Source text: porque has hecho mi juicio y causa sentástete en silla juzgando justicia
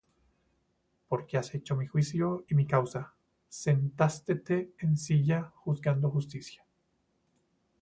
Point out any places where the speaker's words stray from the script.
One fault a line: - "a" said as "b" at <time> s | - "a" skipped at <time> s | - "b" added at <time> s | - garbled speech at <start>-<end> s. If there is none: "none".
- "mi" added at 2.5 s